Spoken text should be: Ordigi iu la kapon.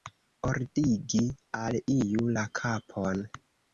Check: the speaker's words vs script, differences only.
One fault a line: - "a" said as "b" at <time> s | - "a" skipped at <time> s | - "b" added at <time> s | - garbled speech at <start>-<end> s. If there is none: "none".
- "al" added at 1.6 s